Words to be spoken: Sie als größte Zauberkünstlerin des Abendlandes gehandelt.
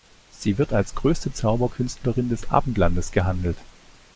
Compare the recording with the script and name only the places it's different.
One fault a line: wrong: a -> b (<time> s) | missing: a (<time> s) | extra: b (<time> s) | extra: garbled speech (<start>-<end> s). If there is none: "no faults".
extra: wird (0.6 s)